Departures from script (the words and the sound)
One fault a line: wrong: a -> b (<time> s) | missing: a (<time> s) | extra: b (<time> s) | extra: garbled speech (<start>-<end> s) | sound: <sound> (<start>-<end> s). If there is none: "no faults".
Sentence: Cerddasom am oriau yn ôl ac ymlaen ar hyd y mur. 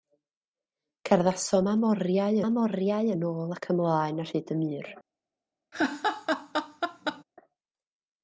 extra: am oriau (2.5 s)
sound: laugh (5.7-7.2 s)